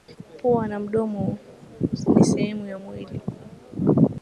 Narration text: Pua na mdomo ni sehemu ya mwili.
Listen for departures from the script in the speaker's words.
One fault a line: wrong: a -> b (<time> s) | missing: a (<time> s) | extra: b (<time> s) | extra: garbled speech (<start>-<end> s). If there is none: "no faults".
no faults